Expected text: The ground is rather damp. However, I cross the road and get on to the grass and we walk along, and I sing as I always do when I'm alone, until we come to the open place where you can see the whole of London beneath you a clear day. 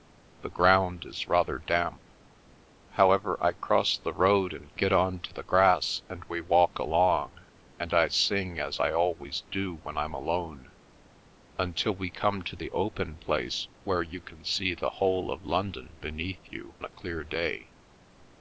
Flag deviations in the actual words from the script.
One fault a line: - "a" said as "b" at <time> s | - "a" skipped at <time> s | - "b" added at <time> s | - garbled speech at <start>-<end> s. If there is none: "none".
none